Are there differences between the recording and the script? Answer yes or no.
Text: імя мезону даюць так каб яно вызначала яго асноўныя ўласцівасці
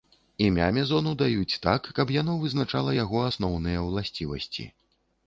no